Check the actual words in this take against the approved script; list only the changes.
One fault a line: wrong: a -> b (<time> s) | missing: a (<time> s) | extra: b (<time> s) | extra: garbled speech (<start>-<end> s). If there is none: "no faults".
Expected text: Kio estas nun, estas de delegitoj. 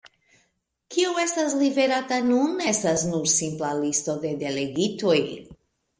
extra: liverata (1.6 s)
extra: nur simpla listo (3.1 s)